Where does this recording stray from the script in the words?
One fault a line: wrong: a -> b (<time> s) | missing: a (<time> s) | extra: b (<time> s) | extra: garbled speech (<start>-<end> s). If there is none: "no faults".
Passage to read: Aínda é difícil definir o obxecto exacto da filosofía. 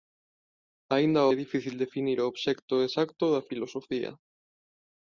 no faults